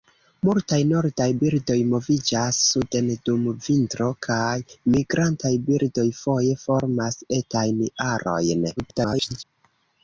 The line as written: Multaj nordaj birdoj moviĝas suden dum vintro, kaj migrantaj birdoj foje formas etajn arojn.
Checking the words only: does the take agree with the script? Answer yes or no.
no